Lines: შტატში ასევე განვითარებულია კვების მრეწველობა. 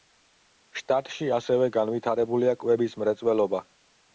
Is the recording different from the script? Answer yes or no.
no